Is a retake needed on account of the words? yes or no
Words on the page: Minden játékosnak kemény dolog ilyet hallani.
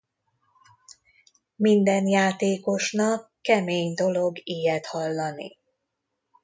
no